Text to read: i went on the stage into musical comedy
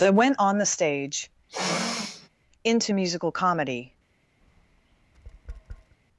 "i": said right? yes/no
no